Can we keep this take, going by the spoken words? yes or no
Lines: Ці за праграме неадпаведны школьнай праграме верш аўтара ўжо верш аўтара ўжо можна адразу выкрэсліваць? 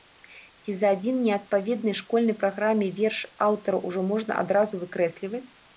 no